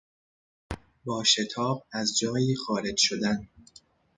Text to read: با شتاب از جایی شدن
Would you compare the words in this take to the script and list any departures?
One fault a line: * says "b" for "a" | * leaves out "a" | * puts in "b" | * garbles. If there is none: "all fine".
* puts in "خارج"